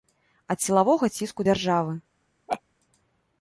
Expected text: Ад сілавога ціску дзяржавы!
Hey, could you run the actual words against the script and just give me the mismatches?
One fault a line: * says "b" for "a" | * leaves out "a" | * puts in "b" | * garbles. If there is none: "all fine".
all fine